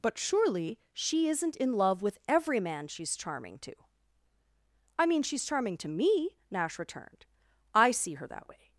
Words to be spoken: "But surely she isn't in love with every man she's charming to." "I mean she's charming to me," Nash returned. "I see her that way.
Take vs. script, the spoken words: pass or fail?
pass